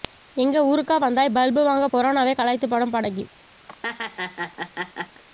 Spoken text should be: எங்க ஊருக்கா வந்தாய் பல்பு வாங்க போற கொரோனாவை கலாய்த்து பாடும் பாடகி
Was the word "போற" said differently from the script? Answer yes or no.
yes